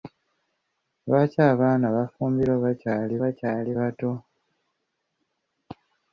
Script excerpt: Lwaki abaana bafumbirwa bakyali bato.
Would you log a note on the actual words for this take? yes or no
yes